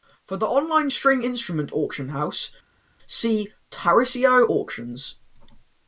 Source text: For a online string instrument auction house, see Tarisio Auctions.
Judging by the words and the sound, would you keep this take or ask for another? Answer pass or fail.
fail